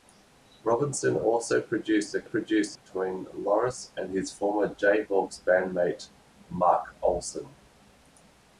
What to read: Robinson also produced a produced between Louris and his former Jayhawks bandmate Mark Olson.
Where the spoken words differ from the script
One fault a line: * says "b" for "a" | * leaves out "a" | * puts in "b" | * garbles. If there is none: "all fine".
all fine